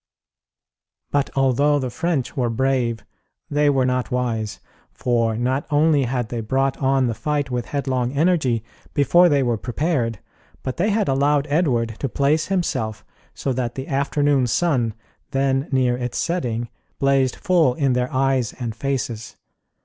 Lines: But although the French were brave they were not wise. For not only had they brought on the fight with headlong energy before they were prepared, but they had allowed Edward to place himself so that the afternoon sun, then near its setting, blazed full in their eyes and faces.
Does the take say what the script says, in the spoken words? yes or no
yes